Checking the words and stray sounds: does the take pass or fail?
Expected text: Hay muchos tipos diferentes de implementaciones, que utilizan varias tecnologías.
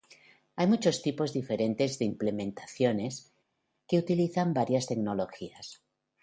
pass